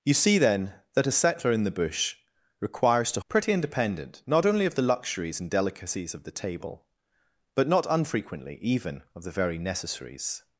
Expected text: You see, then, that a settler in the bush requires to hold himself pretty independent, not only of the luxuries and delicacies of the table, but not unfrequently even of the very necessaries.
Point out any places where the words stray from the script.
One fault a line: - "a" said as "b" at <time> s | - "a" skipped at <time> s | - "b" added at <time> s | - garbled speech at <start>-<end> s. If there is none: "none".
- "hold himself" skipped at 3.2 s